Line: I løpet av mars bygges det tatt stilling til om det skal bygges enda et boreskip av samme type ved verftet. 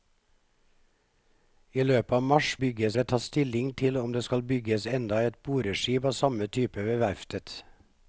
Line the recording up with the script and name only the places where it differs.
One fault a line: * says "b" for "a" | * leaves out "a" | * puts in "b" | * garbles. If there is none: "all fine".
all fine